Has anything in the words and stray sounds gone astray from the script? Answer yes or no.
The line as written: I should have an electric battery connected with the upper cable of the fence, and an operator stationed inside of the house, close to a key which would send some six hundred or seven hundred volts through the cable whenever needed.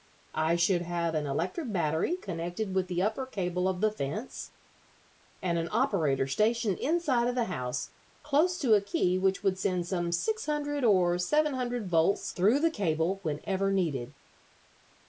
no